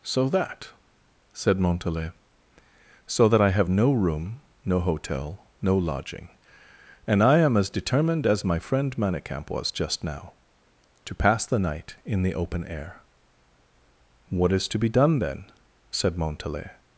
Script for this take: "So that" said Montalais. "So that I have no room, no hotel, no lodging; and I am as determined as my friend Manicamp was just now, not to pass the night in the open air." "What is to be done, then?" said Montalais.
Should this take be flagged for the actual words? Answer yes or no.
yes